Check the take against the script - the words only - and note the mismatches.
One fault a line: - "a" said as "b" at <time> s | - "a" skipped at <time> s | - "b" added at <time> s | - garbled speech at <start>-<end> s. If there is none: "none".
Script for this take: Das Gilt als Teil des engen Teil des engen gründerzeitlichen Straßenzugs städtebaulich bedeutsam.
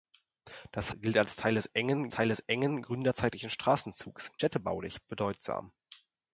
none